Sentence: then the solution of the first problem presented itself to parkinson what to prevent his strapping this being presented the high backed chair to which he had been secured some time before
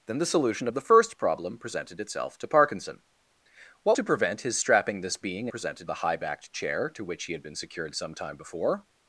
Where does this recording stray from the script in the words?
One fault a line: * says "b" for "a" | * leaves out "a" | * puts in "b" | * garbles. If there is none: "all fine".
all fine